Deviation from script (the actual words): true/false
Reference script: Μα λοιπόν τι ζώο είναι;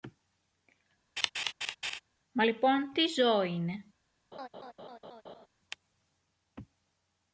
false